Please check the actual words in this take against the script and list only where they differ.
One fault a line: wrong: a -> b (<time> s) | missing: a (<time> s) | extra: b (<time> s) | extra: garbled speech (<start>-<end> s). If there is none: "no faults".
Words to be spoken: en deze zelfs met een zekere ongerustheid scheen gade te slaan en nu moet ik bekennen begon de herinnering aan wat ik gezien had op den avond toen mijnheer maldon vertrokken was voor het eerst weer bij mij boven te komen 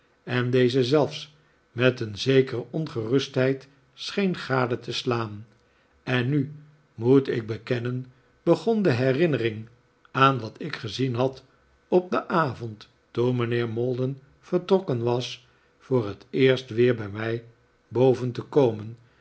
no faults